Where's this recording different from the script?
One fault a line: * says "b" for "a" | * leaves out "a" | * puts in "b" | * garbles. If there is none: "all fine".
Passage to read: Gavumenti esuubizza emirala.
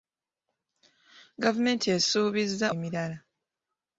all fine